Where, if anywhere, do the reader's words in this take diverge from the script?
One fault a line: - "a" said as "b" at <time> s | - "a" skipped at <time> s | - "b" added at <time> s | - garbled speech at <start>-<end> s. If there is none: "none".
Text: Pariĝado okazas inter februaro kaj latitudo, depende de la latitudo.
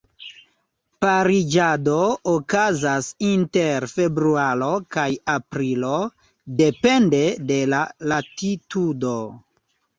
- "latitudo" said as "aprilo" at 5.4 s